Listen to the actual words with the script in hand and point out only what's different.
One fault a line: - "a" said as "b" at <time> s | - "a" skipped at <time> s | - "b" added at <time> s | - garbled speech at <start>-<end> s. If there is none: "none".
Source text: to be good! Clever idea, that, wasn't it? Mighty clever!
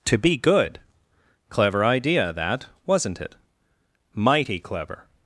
none